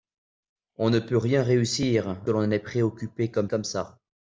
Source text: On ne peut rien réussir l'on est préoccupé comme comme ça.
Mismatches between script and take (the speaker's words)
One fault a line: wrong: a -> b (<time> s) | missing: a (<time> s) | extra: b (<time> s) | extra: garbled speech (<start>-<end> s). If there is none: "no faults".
no faults